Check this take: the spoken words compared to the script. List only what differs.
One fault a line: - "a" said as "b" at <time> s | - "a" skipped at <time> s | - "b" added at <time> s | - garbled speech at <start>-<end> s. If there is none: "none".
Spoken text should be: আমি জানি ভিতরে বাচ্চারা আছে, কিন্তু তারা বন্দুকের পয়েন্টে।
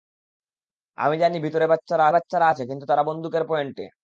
- "বাচ্চারা" added at 2.1 s